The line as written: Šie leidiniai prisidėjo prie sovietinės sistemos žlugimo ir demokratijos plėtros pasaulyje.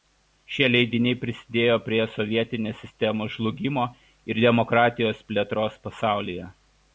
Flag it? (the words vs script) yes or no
no